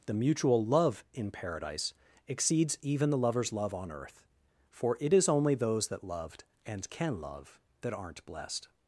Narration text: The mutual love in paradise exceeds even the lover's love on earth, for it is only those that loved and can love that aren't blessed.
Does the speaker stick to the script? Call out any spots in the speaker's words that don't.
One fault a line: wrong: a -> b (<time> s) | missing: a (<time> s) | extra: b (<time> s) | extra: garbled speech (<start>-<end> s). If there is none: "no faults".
no faults